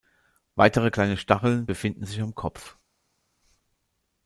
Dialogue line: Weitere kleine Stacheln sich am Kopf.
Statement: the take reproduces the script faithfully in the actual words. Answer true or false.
false